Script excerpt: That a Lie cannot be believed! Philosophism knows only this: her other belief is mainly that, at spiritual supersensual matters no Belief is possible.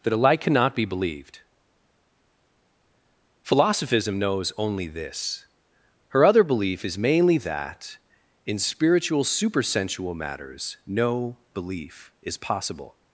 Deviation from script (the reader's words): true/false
true